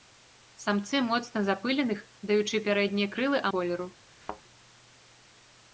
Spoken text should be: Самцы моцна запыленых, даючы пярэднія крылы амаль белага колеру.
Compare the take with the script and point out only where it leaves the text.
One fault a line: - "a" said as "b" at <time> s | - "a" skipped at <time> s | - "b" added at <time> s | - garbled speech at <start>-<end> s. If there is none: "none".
- "амаль белага" skipped at 3.5 s